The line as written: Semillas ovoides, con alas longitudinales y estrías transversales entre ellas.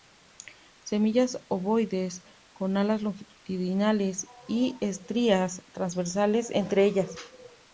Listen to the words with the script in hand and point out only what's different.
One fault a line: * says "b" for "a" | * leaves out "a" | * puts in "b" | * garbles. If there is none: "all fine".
all fine